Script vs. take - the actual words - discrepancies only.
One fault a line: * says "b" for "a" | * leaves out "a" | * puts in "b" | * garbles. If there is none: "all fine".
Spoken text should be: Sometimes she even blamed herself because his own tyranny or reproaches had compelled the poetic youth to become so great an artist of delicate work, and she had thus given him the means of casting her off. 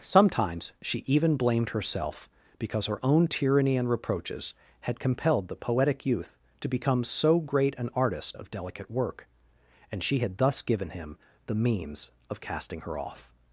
* says "her" for "his"
* says "and" for "or"